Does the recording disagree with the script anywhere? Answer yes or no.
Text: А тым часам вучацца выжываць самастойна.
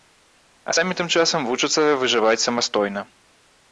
yes